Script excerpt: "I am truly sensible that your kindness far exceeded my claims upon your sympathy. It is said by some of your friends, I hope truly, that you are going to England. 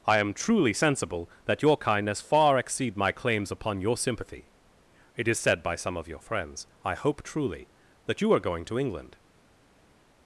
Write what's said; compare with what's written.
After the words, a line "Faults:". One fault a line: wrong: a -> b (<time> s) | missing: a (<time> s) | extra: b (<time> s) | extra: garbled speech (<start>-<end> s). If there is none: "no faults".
"I am truly sensible that your kindness far exceed my claims upon your sympathy. It is said by some of your friends, I hope truly, that you are going to England.
Faults:
wrong: exceeded -> exceed (2.6 s)